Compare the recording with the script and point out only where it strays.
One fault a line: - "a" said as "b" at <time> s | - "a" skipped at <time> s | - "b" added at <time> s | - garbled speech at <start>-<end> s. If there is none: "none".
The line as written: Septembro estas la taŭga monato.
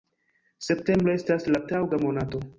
none